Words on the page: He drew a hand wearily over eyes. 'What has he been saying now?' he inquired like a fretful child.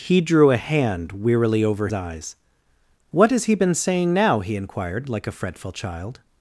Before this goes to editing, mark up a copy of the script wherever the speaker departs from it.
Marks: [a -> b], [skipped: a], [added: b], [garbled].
He drew a hand wearily over eyes. 'What has he been saying now?' he inquired like a fretful child.